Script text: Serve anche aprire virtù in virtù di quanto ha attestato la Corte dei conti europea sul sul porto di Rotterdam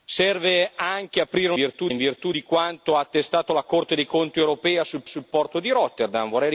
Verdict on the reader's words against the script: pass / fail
pass